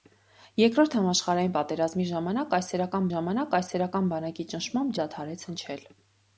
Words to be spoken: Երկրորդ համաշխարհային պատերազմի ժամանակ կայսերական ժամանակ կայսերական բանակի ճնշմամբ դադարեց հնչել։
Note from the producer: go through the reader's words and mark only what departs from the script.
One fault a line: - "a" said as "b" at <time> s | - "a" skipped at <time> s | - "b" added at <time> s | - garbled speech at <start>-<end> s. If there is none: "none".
none